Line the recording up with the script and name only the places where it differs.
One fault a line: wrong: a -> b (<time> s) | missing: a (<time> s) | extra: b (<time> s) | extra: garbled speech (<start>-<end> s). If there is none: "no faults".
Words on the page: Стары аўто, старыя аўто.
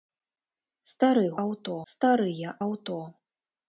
no faults